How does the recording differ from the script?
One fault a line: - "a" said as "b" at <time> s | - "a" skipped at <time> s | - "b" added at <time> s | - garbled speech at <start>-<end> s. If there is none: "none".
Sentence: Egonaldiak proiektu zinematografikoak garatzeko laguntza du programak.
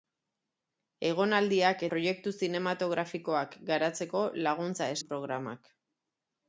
none